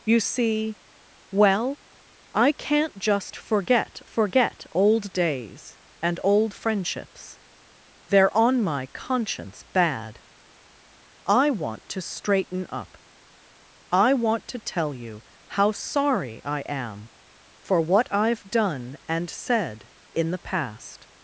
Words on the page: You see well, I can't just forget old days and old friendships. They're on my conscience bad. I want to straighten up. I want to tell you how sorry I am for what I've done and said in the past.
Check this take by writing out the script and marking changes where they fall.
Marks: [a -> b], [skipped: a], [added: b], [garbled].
You see well, I can't just forget [added: forget] old days and old friendships. They're on my conscience bad. I want to straighten up. I want to tell you how sorry I am for what I've done and said in the past.